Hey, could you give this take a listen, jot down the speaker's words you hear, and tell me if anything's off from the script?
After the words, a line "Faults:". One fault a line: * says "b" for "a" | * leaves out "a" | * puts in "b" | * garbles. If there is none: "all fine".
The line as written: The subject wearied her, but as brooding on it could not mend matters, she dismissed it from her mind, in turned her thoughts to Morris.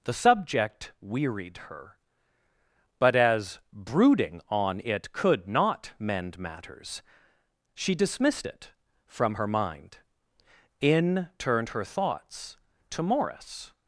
The subject wearied her, but as brooding on it could not mend matters, she dismissed it from her mind, in turned her thoughts to Morris.
Faults:
all fine